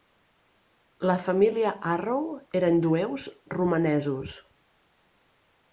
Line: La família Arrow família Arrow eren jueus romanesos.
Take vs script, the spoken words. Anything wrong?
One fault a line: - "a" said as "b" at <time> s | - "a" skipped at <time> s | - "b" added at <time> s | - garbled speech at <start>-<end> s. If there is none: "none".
- "família Arrow" skipped at 2.2 s